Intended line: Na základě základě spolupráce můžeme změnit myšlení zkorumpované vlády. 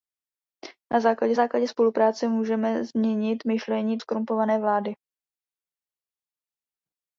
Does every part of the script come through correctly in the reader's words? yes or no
yes